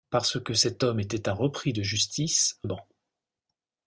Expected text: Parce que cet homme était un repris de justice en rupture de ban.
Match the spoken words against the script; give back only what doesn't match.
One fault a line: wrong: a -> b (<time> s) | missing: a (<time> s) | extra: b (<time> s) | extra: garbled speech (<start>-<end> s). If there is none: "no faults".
missing: en rupture de (2.6 s)